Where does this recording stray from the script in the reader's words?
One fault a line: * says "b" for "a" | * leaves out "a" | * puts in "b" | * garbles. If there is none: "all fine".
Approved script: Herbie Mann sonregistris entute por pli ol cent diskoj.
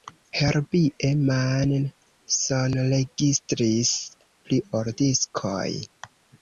* leaves out "entute por"
* leaves out "cent"